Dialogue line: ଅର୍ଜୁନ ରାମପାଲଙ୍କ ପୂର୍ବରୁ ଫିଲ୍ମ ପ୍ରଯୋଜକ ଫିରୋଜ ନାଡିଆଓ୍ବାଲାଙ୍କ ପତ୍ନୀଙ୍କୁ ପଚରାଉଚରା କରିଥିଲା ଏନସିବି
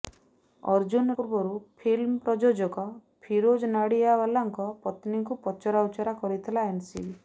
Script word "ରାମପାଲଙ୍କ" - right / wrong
wrong